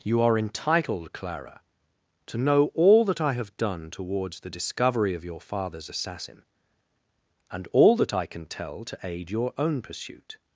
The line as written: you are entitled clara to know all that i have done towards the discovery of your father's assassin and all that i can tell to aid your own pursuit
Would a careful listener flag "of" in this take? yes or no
no